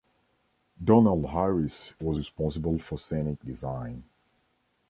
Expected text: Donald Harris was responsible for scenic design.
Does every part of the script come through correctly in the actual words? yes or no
yes